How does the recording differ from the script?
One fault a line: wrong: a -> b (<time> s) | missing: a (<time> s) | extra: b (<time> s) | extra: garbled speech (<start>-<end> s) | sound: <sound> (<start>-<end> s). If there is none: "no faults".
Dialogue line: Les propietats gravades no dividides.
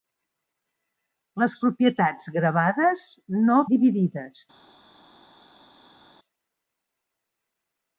no faults